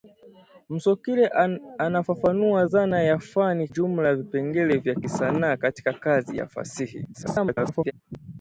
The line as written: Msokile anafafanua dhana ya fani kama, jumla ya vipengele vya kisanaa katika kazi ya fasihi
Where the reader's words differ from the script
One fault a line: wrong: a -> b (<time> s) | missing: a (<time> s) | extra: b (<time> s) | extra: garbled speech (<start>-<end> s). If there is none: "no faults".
missing: kama (3.7 s)
extra: garbled speech (7.1-7.9 s)